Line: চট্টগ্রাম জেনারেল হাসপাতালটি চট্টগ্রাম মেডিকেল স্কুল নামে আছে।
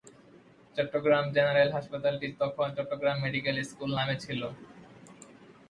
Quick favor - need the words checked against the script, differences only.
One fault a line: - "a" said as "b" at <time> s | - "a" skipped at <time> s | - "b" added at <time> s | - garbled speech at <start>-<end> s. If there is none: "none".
- "তখন" added at 2.4 s
- "আছে" said as "ছিল" at 4.2 s